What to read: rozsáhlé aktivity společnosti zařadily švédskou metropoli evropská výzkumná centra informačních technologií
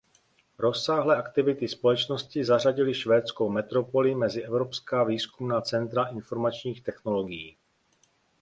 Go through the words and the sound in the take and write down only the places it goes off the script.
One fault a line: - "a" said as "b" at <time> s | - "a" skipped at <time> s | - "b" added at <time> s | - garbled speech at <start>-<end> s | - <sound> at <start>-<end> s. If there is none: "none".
- "mezi" added at 4.1 s